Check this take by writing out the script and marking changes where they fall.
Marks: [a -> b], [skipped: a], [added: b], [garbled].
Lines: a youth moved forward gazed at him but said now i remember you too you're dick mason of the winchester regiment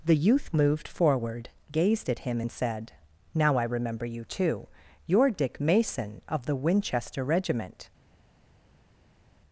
[a -> the] youth moved forward gazed at him [but -> and] said now i remember you too you're dick mason of the winchester regiment